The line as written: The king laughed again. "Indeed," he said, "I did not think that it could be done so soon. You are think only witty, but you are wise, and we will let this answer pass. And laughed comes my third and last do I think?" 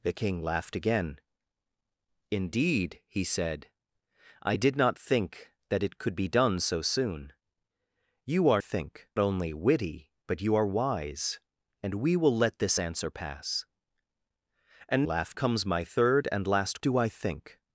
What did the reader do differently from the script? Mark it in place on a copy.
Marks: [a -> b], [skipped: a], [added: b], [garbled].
The king laughed again. "Indeed," he said, "I did not think that it could be done so soon. You are think only witty, but you are wise, and we will let this answer pass. And laughed comes my third and last do I think?"